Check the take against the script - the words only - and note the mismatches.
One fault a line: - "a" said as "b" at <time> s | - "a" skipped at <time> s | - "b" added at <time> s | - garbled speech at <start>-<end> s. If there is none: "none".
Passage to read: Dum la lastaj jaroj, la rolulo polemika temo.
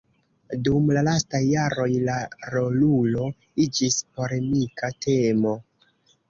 - "iĝis" added at 3.7 s